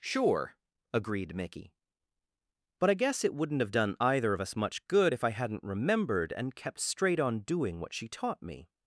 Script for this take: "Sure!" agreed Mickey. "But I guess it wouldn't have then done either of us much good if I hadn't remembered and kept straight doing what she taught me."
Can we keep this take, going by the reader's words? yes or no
no